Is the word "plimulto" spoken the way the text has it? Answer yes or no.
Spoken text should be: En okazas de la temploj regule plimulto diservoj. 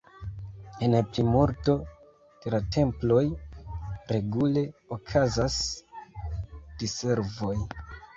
no